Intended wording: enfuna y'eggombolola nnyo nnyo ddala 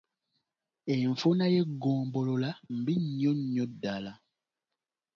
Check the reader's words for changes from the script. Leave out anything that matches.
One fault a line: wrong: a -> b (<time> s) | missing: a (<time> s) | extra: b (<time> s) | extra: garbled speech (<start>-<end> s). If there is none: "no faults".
extra: mbi (2.8 s)